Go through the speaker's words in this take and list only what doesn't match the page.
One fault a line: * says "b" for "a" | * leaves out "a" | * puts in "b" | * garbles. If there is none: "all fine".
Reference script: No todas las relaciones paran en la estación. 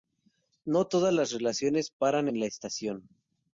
all fine